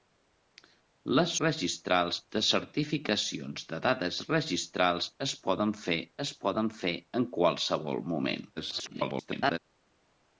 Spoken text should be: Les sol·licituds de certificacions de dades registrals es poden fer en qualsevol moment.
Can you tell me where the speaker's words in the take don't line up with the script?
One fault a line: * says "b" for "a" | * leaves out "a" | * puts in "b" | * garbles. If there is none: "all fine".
* says "registrals" for "sol·licituds"
* puts in "es poden fer"
* garbles